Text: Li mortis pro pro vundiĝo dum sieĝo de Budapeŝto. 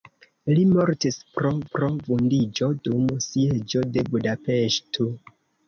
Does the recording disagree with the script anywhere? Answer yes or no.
no